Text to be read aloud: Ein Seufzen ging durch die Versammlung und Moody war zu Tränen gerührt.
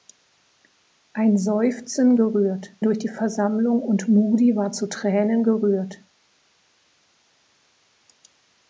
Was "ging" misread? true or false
true